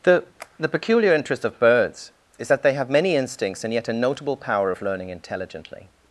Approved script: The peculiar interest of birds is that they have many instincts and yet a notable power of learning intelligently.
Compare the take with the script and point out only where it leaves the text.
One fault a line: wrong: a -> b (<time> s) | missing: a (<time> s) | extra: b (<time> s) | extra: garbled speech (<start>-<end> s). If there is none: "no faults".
extra: the (0.6 s)